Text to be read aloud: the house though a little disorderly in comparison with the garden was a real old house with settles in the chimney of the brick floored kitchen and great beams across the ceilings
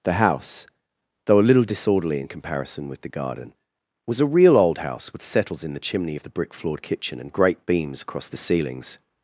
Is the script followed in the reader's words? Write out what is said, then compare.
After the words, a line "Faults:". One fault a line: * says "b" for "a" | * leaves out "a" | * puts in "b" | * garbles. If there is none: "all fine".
the house though a little disorderly in comparison with the garden was a real old house with settles in the chimney of the brick floored kitchen and great beams across the ceilings
Faults:
all fine